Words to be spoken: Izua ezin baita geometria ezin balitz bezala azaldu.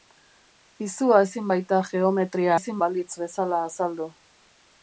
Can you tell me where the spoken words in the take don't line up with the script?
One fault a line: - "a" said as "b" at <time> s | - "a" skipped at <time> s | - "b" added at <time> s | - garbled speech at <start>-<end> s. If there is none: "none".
none